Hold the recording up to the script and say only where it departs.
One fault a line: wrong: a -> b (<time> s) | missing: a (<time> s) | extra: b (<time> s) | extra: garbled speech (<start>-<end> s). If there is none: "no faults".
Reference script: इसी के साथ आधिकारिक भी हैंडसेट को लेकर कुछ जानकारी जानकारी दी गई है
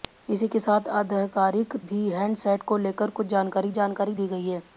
no faults